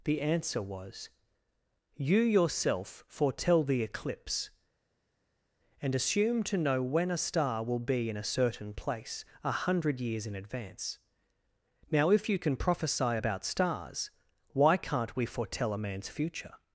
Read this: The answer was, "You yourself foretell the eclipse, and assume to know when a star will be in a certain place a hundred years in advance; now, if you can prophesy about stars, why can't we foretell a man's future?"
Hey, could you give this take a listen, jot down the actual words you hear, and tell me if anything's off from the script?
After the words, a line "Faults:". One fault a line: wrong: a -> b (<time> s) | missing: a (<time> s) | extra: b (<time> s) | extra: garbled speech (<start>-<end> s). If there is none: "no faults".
The answer was, "You yourself foretell the eclipse, and assume to know when a star will be in a certain place a hundred years in advance; now, if you can prophesy about stars, why can't we foretell a man's future?"
Faults:
no faults